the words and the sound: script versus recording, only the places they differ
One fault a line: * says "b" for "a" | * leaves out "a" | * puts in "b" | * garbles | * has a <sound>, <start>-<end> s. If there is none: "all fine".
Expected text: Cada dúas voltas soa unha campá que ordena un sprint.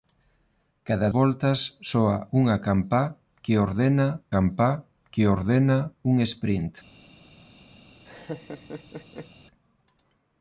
* leaves out "dúas"
* puts in "campá que ordena"
* has a laugh, 8.1-9.3 s